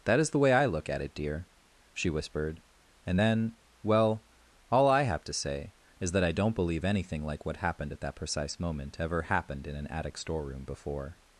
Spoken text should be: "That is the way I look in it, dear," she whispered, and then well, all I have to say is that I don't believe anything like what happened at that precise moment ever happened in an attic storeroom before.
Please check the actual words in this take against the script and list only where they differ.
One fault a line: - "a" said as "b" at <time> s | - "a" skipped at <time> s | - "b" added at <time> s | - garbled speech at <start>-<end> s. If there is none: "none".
- "in" said as "at" at 0.9 s